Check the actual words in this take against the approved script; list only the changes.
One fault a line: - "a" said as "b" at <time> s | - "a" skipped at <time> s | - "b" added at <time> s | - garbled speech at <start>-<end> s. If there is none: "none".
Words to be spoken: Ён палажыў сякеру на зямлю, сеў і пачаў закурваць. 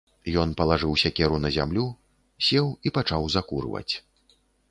none